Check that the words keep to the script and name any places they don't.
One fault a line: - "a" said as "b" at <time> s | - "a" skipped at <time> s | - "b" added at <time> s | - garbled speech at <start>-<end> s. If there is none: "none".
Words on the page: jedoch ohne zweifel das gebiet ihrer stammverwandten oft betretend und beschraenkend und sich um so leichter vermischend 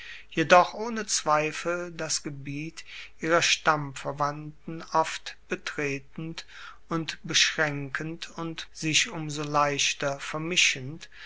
none